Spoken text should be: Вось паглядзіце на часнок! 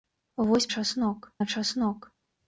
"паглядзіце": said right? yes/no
no